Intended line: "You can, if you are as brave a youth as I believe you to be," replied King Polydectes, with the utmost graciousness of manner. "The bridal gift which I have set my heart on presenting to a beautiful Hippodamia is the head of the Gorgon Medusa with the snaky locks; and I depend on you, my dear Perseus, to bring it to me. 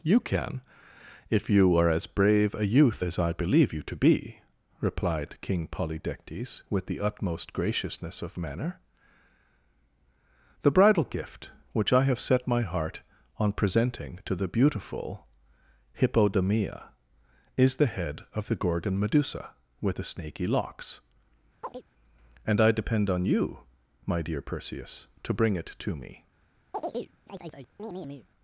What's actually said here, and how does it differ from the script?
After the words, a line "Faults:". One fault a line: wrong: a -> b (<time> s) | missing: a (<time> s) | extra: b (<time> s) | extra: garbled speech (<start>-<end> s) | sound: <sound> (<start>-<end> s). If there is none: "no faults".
"You can, if you are as brave a youth as I believe you to be," replied King Polydectes, with the utmost graciousness of manner. "The bridal gift which I have set my heart on presenting to the beautiful Hippodamia is the head of the Gorgon Medusa with the snaky locks; and I depend on you, my dear Perseus, to bring it to me.
Faults:
wrong: a -> the (14.3 s)
sound: chirp (21.6-21.8 s)
sound: chirp (26.7-28.3 s)